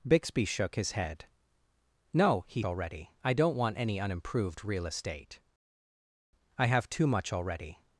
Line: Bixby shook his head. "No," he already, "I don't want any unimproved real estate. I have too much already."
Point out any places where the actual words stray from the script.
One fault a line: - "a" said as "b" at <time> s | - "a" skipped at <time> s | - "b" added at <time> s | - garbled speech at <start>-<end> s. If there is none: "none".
none